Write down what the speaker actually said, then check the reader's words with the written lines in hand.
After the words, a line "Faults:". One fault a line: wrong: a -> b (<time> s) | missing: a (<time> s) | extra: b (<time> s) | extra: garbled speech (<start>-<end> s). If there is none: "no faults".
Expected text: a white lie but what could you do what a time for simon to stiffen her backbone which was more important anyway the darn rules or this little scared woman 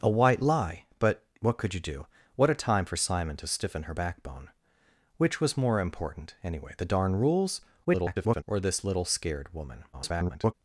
a white lie but what could you do what a time for simon to stiffen her backbone which was more important anyway the darn rules [garbled] or this little scared woman [garbled]
Faults:
extra: garbled speech (7.8-8.4 s)
extra: garbled speech (9.9-10.5 s)